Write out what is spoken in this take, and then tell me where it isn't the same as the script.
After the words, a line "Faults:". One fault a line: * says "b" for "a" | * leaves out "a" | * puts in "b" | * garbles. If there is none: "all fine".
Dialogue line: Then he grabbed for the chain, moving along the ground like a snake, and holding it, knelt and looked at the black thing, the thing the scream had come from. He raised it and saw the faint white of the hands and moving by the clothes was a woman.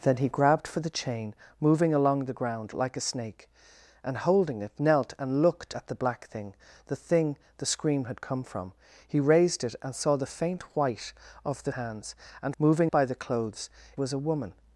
Then he grabbed for the chain, moving along the ground like a snake, and holding it, knelt and looked at the black thing, the thing the scream had come from. He raised it and saw the faint white of the hands and moving by the clothes was a woman.
Faults:
all fine